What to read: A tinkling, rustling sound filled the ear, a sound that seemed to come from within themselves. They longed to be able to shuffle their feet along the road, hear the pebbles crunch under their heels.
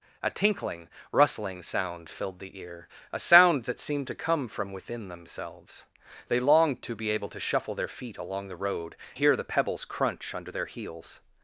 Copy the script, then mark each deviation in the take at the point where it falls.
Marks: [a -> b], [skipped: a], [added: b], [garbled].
A tinkling, rustling sound filled the ear, a sound that seemed to come from within themselves. They longed to be able to shuffle their feet along the road, hear the pebbles crunch under their heels.